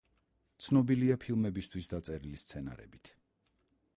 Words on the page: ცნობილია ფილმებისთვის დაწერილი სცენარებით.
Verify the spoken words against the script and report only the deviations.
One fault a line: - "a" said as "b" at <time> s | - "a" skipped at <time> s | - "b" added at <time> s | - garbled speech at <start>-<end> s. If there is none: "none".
none